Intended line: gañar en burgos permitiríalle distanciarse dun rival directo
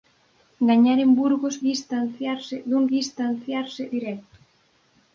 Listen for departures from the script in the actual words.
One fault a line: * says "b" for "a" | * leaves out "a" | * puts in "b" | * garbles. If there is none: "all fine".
* leaves out "permitiríalle"
* says "distanciarse" for "rival"